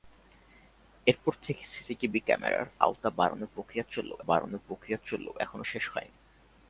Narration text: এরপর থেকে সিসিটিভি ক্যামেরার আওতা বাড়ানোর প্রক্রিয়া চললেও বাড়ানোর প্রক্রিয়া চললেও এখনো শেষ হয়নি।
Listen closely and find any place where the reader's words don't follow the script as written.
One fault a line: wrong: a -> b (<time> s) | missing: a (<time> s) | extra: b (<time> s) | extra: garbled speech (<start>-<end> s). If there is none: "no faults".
no faults